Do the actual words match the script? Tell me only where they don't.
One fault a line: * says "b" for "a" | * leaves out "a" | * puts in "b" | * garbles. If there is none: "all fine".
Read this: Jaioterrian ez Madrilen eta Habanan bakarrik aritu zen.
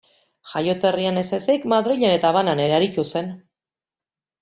* puts in "ezik"
* says "ere" for "bakarrik"